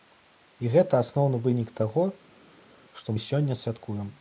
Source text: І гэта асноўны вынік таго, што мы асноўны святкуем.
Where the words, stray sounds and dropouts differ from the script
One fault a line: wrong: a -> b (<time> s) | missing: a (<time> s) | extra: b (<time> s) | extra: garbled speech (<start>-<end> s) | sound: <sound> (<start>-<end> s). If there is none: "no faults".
wrong: асноўны -> сёння (3.3 s)